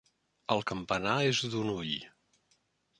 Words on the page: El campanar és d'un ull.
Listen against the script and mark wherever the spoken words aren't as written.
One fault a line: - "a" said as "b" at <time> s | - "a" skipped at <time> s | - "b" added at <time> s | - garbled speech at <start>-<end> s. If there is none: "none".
none